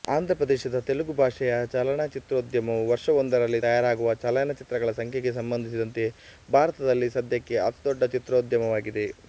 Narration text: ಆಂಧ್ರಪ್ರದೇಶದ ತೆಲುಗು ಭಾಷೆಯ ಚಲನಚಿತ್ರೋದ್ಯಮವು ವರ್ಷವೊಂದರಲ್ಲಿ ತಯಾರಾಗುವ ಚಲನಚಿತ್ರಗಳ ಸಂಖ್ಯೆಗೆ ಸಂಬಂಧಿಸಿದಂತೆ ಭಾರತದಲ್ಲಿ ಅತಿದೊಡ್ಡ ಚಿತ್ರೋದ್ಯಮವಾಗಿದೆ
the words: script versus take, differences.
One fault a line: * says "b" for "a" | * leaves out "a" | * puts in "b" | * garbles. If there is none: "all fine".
* puts in "ಸದ್ಯಕ್ಕೆ"